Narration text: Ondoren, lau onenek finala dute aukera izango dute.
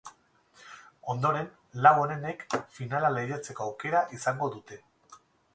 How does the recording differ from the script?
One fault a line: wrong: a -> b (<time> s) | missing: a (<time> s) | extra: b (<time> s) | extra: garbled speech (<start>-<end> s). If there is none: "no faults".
wrong: dute -> lehiatzeko (3.2 s)